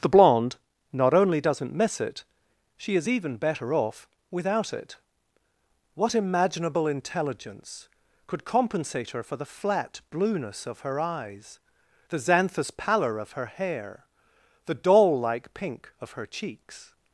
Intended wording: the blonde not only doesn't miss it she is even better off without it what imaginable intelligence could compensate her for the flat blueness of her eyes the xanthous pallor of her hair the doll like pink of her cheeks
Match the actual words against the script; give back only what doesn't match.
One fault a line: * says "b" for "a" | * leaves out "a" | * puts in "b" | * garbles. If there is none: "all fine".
all fine